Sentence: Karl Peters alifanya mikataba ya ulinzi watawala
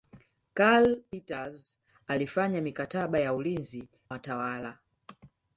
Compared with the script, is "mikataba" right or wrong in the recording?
right